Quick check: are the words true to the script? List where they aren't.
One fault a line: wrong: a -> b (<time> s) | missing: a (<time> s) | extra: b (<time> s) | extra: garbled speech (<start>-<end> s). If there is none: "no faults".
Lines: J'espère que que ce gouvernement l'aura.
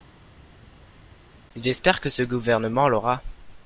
missing: que (2.1 s)